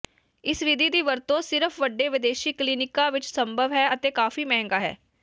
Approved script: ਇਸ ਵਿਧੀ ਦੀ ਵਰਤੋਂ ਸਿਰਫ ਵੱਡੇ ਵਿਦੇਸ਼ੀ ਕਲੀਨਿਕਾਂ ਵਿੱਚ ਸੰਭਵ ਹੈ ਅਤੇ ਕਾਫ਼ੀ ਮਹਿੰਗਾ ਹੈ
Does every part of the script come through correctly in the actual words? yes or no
yes